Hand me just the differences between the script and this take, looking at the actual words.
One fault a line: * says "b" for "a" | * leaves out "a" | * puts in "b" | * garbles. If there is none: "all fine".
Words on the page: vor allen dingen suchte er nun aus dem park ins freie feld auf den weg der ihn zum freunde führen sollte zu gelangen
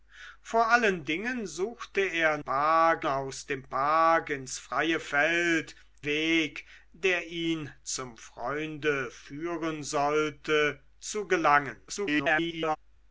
* says "park" for "nun"
* leaves out "auf den"
* garbles